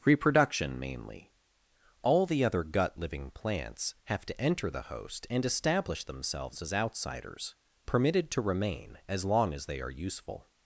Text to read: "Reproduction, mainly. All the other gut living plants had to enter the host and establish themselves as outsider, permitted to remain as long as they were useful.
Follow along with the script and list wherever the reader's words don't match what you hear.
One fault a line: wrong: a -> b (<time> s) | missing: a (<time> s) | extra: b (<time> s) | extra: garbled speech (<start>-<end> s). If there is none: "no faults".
wrong: had -> have (4.0 s)
wrong: outsider -> outsiders (6.7 s)
wrong: were -> are (9.8 s)